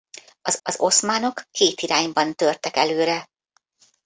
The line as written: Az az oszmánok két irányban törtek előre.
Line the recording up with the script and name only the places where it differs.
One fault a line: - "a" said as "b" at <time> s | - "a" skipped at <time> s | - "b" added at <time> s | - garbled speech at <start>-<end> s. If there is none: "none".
none